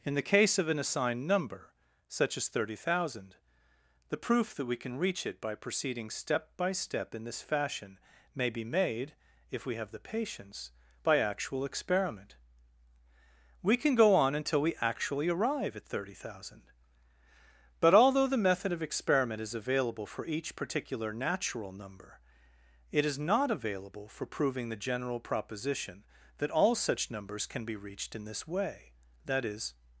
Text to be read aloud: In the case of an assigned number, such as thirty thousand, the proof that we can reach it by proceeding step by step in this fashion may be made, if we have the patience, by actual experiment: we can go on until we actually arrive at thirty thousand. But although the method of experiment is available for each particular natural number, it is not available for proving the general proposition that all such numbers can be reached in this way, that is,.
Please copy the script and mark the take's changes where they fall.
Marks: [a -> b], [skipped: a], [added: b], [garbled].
In the case of an assigned number, such as thirty thousand, the proof that we can reach it by proceeding step by step in this fashion may be made, if we have the patience, by actual experiment: we can go on until we actually arrive at thirty thousand. But although the method of experiment is available for each particular natural number, it is not available for proving the general proposition that all such numbers can be reached in this way, that is,.